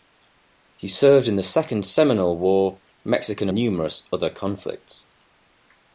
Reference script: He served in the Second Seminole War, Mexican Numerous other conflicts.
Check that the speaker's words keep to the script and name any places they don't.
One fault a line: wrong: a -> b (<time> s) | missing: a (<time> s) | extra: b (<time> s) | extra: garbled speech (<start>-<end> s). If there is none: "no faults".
no faults